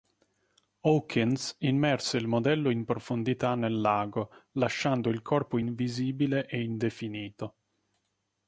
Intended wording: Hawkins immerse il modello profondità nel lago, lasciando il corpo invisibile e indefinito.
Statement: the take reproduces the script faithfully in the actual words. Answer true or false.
false